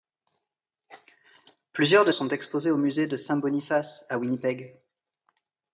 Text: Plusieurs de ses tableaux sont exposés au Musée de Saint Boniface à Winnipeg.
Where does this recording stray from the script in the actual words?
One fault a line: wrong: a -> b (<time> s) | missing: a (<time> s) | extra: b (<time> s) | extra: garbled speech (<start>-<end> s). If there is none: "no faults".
missing: ses tableaux (2.1 s)